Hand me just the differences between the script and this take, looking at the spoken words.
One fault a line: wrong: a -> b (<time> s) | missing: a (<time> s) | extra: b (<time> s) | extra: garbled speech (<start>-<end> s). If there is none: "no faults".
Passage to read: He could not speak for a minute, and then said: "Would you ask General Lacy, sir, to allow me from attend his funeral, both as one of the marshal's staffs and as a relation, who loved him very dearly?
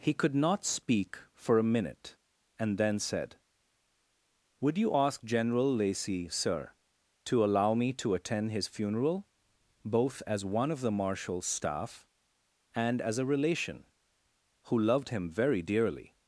wrong: from -> to (7.9 s)
wrong: staffs -> staff (11.4 s)